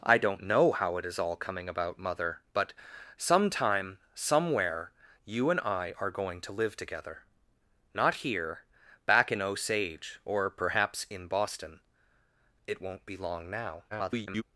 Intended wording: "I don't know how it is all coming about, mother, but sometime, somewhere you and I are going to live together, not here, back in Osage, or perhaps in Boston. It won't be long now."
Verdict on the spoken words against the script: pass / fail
fail